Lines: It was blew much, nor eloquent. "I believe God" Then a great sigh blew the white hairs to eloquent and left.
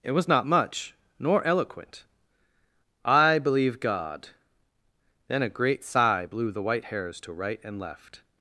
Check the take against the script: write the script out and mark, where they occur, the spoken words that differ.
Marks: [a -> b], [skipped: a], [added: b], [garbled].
It was [blew -> not] much, nor eloquent. "I believe God" Then a great sigh blew the white hairs to [eloquent -> right] and left.